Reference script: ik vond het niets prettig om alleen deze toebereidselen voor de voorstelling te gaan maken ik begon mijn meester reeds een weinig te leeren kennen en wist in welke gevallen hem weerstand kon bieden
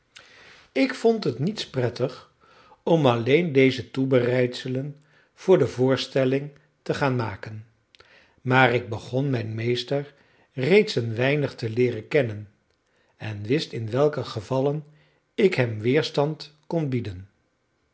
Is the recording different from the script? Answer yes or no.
yes